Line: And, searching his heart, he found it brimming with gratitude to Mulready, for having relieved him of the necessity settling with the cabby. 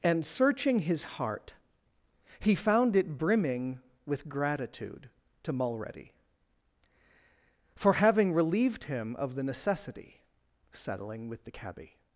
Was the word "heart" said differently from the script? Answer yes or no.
no